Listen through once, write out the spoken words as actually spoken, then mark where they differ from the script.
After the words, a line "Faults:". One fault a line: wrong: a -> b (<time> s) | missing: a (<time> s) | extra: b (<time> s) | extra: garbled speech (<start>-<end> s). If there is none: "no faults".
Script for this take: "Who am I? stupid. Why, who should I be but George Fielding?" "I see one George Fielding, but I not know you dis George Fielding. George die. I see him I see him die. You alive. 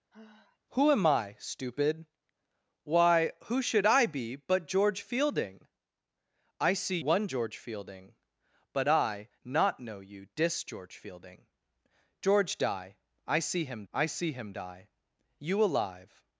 "Who am I? stupid. Why, who should I be but George Fielding?" "I see one George Fielding, but I not know you dis George Fielding. George die. I see him I see him die. You alive.
Faults:
no faults